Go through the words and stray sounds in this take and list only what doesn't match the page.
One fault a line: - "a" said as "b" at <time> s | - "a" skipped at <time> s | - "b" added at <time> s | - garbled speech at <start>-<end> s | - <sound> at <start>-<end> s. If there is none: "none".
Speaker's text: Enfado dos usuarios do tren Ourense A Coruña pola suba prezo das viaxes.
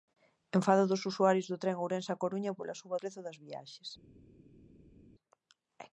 none